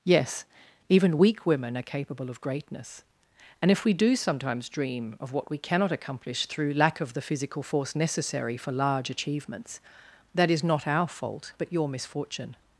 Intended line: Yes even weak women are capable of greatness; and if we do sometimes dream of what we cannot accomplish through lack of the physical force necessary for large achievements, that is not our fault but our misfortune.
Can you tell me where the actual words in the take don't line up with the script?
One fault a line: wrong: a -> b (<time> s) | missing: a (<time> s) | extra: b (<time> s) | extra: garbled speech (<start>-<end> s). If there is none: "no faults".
wrong: our -> your (11.7 s)